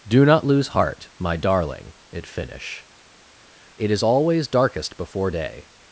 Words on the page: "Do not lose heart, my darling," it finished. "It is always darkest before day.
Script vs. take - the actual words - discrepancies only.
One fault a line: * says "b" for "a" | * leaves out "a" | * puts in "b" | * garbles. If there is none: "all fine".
* says "finish" for "finished"